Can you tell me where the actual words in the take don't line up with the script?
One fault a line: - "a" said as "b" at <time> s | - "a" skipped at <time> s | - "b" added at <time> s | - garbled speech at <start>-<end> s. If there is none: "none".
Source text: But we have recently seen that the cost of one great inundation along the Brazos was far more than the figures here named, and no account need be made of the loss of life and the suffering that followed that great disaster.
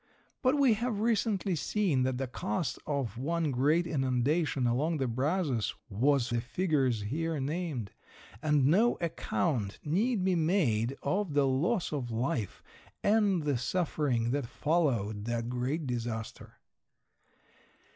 - "far more than" skipped at 6.3 s